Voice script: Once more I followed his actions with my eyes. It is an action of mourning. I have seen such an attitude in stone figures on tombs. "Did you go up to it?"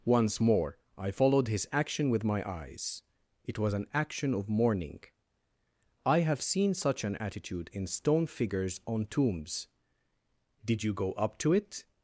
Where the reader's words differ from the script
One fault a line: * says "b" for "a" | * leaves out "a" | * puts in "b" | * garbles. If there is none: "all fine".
* says "action" for "actions"
* says "was" for "is"